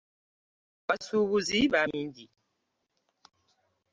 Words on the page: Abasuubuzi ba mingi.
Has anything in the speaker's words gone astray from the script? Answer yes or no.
no